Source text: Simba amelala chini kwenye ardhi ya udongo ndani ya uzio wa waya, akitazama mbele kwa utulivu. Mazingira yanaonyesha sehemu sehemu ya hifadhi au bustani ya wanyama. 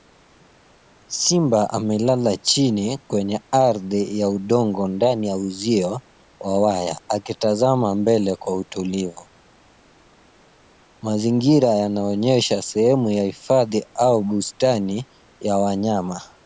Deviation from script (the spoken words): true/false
true